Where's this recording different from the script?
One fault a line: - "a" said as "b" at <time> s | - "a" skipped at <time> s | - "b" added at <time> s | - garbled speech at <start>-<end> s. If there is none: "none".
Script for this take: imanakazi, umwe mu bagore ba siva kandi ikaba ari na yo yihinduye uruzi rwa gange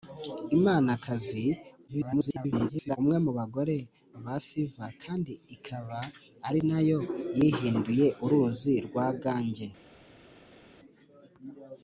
- garbled speech at 1.9-3.0 s